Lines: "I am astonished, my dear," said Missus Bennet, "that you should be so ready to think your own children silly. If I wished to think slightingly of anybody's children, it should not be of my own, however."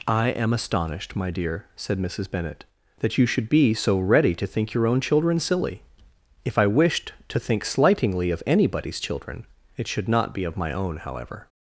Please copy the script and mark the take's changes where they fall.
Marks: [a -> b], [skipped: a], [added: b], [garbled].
"I am astonished, my dear," said Missus Bennet, "that you should be so ready to think your own children silly. If I wished to think slightingly of anybody's children, it should not be of my own, however."